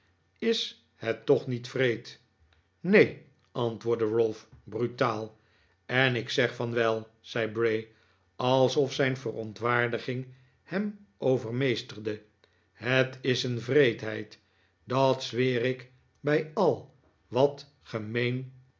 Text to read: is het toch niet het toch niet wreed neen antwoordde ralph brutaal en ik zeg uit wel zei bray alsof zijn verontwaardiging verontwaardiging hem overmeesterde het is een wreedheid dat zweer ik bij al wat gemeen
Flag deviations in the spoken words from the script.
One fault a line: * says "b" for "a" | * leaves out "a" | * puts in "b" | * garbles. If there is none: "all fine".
* leaves out "het toch niet"
* says "van" for "uit"
* leaves out "verontwaardiging"